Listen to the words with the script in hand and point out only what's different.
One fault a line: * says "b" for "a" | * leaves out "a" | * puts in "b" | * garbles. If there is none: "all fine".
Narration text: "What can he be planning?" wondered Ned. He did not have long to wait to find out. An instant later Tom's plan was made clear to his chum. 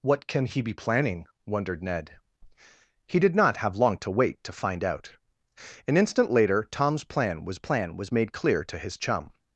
* puts in "plan was"